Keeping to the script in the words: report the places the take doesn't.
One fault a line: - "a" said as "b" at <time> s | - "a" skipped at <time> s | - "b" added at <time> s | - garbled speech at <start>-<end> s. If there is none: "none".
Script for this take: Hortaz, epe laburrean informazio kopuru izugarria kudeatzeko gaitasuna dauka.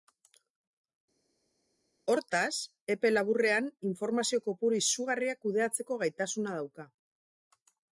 none